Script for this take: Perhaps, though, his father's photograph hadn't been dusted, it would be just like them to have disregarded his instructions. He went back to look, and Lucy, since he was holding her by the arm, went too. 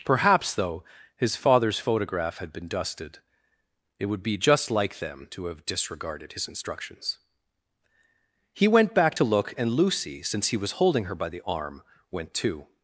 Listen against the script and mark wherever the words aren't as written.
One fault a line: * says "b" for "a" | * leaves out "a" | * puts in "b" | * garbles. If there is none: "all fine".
* says "had" for "hadn't"